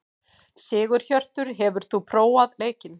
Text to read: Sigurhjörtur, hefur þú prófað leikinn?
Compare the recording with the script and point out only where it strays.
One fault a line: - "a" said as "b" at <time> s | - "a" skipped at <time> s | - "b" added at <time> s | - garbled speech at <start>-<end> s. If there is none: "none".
none